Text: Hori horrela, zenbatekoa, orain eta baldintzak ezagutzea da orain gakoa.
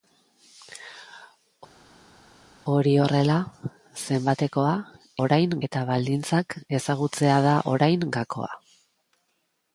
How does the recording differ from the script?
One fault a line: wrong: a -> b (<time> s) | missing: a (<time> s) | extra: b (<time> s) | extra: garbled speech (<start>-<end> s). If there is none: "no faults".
no faults